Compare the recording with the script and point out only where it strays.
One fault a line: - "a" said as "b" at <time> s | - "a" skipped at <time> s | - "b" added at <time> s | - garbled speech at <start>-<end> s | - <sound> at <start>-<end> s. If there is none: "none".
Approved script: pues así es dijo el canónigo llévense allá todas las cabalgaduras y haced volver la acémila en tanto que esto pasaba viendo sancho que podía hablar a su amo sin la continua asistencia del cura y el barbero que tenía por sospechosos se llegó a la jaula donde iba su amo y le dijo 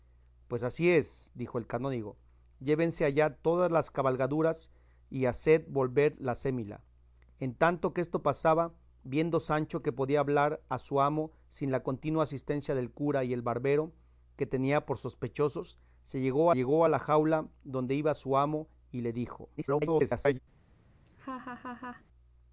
- "llegó" added at 16.5 s
- garbled speech at 19.6-20.4 s
- laugh at 21.1-22.0 s